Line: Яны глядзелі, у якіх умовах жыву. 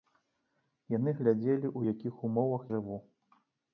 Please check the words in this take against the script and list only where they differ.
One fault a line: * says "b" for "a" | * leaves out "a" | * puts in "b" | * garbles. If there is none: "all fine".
all fine